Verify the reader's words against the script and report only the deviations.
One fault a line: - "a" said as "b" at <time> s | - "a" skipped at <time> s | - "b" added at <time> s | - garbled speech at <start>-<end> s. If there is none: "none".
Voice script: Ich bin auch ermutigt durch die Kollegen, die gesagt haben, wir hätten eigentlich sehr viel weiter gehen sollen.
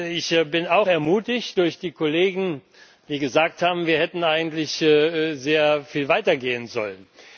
none